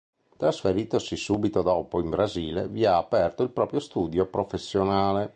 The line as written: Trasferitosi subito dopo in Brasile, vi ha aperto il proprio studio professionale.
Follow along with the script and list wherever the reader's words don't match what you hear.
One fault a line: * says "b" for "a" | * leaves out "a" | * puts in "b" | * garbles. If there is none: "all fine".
all fine